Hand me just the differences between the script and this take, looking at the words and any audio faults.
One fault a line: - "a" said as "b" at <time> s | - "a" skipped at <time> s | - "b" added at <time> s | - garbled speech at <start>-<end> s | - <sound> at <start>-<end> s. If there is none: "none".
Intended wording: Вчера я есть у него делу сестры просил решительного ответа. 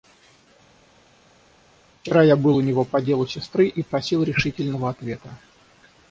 - "есть" said as "был" at 2.4 s
- "по" added at 2.9 s
- "и" added at 3.7 s